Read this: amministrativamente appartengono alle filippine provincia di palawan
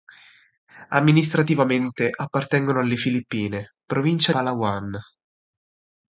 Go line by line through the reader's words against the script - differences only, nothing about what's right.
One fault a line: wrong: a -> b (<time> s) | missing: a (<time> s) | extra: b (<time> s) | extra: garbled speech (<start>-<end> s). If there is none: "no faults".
missing: di (4.3 s)